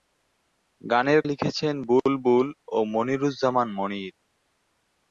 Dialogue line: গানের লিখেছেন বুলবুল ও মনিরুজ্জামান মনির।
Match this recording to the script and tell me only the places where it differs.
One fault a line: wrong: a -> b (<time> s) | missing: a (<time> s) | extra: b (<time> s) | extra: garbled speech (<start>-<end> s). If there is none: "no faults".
no faults